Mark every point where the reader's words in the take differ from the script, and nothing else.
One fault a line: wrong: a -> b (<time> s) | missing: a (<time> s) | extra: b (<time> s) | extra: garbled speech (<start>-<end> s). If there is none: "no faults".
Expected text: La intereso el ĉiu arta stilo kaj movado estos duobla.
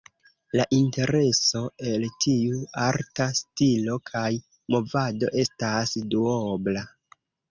wrong: ĉiu -> tiu (2.2 s)
wrong: estos -> estas (5.5 s)